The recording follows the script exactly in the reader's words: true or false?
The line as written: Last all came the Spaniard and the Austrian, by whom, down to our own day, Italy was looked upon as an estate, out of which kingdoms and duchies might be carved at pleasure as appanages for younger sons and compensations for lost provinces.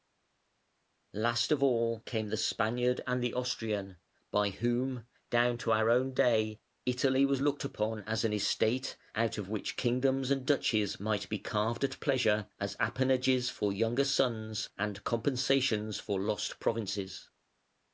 false